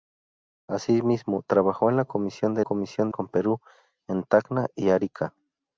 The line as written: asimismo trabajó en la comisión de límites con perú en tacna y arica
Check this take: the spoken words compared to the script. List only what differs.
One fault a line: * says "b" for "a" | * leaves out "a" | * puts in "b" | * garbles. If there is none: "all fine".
* says "comisión" for "límites"